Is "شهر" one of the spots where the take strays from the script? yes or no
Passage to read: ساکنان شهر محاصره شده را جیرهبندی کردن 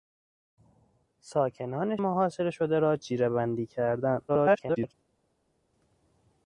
yes